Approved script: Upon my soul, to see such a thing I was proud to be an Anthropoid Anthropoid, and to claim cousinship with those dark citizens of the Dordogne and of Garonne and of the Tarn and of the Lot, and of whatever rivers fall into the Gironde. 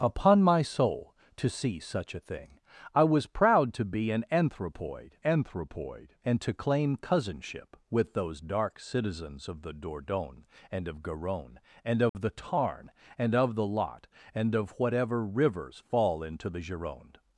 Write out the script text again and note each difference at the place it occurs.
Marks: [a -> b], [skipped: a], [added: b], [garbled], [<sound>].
Upon my soul, to see such a thing I was proud to be an Anthropoid Anthropoid, and to claim cousinship with those dark citizens of the Dordogne and of Garonne and of [dropout] the Tarn and of the Lot, and of whatever rivers fall into the Gironde.